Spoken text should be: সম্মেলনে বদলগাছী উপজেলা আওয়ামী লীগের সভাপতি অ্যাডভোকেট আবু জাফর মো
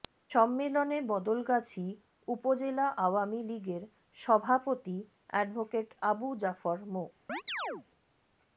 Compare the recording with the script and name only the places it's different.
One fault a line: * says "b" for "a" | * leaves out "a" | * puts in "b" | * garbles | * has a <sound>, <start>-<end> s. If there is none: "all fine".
* has a chirp, 7.3-7.9 s